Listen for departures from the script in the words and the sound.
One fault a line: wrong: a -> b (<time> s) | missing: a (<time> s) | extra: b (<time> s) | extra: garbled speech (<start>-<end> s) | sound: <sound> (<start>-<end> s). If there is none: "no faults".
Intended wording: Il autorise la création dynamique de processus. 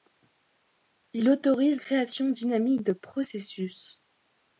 missing: la (1.8 s)